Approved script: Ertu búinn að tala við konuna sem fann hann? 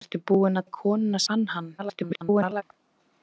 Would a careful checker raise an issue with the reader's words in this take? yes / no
yes